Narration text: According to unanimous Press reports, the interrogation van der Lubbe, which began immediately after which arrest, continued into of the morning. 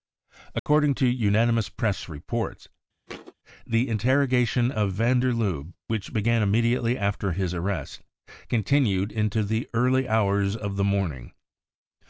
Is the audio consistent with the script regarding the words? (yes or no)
no